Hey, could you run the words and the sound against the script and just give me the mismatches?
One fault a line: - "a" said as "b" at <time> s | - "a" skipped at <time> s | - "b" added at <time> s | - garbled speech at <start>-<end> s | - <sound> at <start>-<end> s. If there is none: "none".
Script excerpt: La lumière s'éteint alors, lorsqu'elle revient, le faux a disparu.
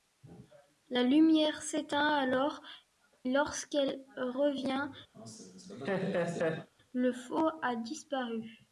- laugh at 5.1-6.7 s